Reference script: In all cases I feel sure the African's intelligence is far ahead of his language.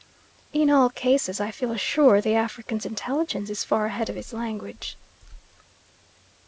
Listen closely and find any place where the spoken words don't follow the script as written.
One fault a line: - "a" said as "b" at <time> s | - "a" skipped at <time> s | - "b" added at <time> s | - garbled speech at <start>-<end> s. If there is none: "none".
none